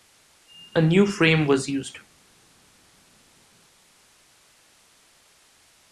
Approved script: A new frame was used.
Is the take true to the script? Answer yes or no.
yes